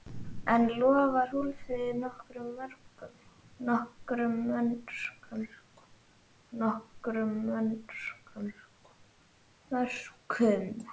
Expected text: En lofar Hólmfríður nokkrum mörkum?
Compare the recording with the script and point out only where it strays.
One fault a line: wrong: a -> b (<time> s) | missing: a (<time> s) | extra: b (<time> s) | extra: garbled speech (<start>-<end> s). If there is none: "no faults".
extra: nokkrum (6.6 s)